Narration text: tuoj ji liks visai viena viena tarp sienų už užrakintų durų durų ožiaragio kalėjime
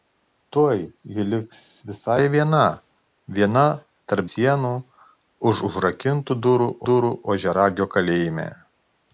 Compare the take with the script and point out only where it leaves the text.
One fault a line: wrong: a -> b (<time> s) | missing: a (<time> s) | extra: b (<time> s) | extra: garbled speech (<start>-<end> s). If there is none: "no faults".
no faults